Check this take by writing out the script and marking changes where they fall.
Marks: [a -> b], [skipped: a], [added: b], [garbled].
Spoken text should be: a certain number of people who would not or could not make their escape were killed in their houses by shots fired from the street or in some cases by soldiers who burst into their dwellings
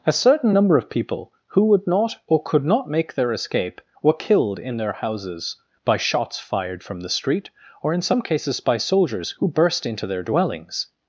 a certain number of people who would not or could not make their escape were killed in their houses by shots fired from the street or in some cases by soldiers who burst into their dwellings